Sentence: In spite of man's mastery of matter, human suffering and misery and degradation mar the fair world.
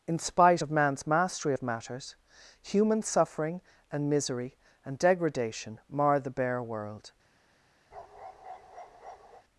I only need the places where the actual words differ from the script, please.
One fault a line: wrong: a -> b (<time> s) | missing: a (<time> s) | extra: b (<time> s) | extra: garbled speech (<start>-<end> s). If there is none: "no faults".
wrong: matter -> matters (1.6 s)
wrong: fair -> bare (6.3 s)